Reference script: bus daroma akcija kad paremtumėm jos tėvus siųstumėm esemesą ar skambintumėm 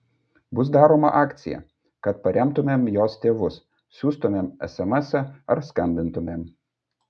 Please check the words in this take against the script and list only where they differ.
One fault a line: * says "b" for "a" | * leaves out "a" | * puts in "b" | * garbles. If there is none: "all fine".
all fine